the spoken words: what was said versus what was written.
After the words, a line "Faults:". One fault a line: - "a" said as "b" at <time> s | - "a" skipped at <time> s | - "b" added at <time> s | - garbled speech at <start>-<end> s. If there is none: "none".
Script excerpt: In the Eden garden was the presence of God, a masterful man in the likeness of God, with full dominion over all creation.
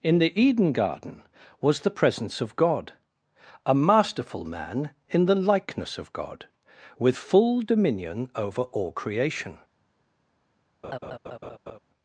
In the Eden garden was the presence of God, a masterful man in the likeness of God, with full dominion over all creation.
Faults:
none